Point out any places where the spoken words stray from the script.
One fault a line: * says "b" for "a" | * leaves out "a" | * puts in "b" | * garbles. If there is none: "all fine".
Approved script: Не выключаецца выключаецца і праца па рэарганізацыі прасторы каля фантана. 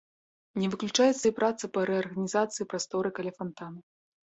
* leaves out "выключаецца"